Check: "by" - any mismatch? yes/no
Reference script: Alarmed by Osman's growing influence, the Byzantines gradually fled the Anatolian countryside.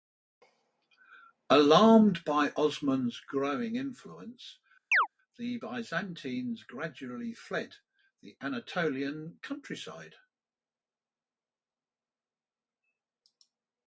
no